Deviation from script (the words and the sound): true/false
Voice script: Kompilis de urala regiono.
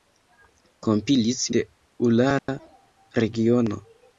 true